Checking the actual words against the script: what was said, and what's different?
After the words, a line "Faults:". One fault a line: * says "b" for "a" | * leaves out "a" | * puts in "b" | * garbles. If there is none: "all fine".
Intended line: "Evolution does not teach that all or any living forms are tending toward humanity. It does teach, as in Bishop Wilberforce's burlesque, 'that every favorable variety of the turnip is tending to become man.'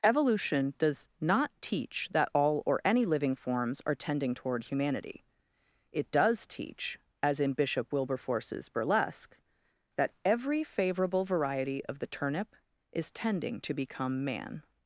"Evolution does not teach that all or any living forms are tending toward humanity. It does teach, as in Bishop Wilberforce's burlesque, 'that every favorable variety of the turnip is tending to become man.'
Faults:
all fine